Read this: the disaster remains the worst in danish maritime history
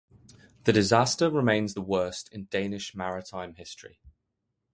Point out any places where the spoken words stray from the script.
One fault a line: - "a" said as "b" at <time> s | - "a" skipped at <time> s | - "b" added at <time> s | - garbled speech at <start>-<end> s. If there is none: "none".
none